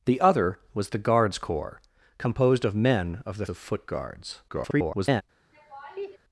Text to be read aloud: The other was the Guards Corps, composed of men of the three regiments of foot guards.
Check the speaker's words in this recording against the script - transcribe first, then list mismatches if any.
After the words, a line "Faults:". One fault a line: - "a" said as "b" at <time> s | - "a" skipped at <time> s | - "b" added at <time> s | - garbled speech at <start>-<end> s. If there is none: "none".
The other was the Guards Corps, composed of men of the of foot guards. [garbled]
Faults:
- "three regiments" skipped at 3.5 s
- garbled speech at 4.5-5.2 s